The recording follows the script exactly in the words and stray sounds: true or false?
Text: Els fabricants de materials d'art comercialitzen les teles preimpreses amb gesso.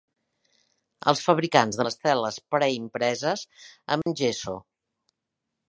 false